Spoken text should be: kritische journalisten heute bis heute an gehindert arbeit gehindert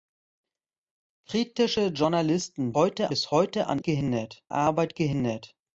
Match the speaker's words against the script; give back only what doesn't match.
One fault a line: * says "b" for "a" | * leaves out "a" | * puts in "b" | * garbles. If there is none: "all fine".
all fine